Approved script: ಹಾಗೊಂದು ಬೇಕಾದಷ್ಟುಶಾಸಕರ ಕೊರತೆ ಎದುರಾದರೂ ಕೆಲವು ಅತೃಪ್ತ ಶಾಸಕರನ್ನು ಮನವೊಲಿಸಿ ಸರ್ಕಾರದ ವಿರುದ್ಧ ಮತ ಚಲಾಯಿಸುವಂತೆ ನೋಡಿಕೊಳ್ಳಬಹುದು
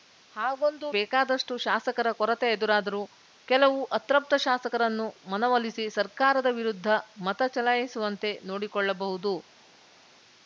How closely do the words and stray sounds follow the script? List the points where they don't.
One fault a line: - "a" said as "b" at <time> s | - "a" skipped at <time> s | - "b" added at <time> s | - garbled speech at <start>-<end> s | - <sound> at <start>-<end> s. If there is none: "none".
none